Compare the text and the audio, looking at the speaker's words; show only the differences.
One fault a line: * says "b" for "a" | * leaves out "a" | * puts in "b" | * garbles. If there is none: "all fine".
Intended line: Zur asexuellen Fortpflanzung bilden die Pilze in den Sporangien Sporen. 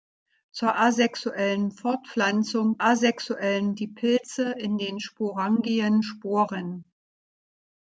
* says "asexuellen" for "bilden"